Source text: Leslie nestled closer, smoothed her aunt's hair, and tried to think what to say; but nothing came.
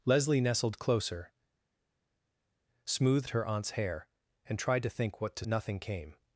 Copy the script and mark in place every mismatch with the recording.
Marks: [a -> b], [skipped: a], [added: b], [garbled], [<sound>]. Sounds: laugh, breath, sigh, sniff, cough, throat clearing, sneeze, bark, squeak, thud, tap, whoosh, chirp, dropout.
Leslie nestled closer, smoothed her aunt's hair, and tried to think what to [skipped: say; but] nothing came.